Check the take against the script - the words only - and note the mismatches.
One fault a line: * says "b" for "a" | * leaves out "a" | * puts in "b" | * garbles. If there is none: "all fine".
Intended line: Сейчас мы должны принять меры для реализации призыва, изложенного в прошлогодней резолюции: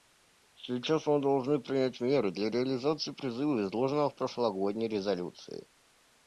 all fine